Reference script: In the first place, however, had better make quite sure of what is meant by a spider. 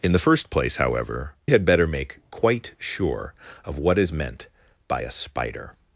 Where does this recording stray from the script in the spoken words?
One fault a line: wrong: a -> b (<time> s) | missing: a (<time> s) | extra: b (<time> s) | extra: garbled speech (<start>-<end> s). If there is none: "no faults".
no faults